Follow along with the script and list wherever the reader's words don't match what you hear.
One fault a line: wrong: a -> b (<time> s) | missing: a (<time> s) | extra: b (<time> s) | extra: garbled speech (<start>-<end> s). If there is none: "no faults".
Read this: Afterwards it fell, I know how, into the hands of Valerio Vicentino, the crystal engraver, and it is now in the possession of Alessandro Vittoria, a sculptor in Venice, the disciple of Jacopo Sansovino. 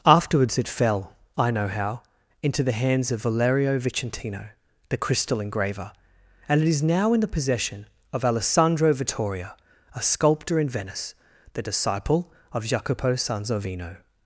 no faults